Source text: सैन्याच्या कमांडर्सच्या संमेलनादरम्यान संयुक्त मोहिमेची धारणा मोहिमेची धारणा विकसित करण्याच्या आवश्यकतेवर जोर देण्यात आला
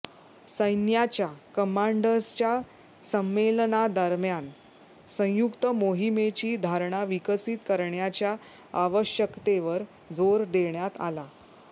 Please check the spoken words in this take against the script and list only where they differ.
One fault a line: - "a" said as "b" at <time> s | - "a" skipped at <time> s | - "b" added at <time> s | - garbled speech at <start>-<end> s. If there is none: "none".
- "मोहिमेची धारणा" skipped at 7.0 s